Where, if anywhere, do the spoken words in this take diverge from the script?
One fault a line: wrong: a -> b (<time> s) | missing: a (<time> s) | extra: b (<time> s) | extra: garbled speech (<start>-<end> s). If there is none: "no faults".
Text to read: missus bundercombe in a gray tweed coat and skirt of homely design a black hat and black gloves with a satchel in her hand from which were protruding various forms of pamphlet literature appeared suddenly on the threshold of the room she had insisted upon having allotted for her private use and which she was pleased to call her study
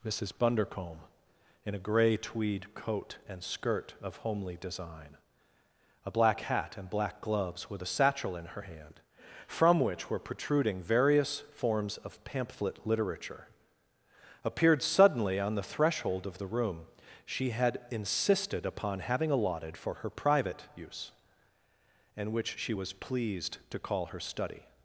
no faults